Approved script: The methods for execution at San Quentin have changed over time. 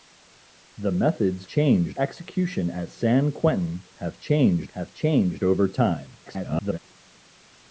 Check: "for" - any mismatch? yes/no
yes